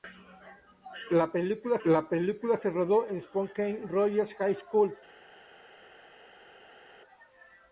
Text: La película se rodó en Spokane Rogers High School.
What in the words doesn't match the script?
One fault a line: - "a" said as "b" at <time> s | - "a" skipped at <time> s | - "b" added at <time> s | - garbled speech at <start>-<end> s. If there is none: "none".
- "la película" added at 1.9 s